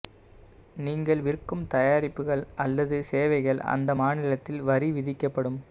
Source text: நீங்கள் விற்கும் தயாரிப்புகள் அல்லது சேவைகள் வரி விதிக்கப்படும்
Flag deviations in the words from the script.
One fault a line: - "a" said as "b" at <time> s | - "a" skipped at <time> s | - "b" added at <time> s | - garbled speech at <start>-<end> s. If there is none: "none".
- "அந்த மாநிலத்தில்" added at 3.7 s